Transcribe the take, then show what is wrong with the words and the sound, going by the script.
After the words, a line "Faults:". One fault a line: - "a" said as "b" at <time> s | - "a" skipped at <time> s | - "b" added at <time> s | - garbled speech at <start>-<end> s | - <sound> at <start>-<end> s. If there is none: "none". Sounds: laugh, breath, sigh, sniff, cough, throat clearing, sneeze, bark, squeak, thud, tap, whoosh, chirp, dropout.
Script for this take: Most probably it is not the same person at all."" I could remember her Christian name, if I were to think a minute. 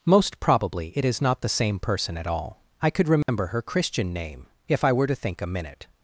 Most probably it is not the same person at all."" I could remember her Christian name, if I were to think a minute.
Faults:
- dropout at 3.2-3.3 s